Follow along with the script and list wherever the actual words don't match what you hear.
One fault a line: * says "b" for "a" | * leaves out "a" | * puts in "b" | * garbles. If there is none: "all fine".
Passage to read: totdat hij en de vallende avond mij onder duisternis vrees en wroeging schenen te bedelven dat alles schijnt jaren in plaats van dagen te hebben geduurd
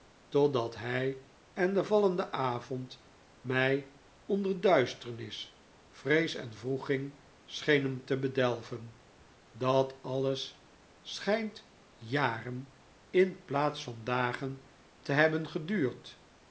all fine